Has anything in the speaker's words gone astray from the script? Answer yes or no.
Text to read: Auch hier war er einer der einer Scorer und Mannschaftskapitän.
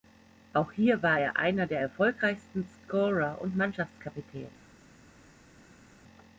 yes